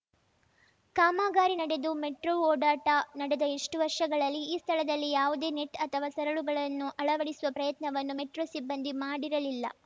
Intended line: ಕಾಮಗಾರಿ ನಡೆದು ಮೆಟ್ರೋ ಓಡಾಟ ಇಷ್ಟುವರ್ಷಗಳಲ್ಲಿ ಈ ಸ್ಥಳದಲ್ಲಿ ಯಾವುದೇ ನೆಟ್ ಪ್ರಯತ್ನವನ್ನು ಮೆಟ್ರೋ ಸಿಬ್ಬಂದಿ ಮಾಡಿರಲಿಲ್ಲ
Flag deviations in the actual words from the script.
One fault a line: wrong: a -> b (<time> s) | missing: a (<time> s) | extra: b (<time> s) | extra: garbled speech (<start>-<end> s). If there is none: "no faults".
extra: ನಡೆದ (3.2 s)
extra: ಅಥವಾ ಸರಳುಗಳನ್ನು ಅಳವಡಿಸುವ (5.9 s)